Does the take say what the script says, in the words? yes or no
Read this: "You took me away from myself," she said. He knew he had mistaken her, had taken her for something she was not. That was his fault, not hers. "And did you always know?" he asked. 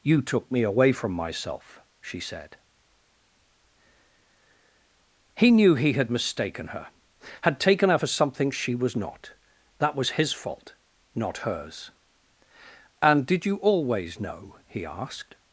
yes